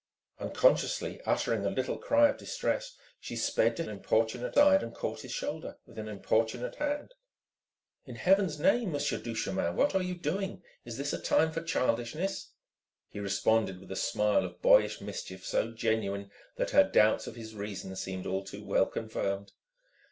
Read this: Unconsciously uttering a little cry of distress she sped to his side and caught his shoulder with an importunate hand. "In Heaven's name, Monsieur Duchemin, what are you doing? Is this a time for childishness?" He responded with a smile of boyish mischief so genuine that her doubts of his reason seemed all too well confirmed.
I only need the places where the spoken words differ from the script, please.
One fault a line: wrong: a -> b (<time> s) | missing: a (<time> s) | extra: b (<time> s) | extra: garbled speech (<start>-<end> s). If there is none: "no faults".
wrong: his -> importunate (3.9 s)